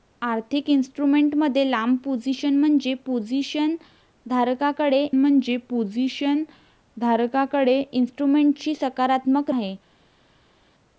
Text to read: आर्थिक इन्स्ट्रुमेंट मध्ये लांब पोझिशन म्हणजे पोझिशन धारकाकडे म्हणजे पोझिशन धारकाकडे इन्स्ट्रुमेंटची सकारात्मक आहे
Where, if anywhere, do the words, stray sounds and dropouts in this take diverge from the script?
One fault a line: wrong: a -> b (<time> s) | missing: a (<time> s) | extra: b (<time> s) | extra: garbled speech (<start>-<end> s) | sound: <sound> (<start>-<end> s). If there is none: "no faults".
no faults